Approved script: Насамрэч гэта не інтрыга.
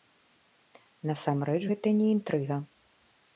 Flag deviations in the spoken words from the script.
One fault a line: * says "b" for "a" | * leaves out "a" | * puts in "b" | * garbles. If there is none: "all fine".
all fine